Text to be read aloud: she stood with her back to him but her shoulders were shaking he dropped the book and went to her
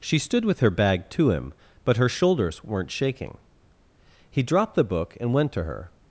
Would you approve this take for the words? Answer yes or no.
no